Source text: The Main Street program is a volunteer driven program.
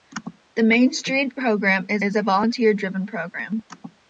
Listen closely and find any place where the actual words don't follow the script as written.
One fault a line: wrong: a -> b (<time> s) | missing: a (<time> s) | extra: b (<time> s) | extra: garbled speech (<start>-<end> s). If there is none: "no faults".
extra: is (2.0 s)